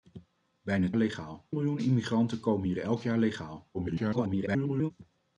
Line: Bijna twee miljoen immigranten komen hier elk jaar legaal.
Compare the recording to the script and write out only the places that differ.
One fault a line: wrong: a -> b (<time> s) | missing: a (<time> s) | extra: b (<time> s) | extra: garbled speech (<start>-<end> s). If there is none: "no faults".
wrong: twee -> legaal (1.0 s)
extra: garbled speech (3.7-4.9 s)